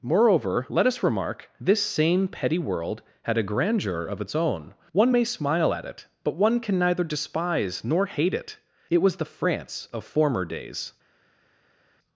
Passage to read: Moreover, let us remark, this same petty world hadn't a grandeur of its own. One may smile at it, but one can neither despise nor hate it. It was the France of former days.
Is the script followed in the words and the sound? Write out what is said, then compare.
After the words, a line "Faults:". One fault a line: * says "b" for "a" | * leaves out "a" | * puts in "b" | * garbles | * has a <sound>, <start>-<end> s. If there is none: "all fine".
Moreover, let us remark, this same petty world had a grandeur of its own. One may smile at it, but one can neither despise nor hate it. It was the France of former days.
Faults:
* says "had" for "hadn't"